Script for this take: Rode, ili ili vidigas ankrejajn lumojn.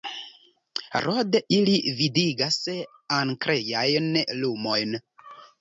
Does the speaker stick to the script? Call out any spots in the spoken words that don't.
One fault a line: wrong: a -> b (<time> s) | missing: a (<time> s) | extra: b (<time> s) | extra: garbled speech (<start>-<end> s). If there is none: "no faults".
missing: ili (1.8 s)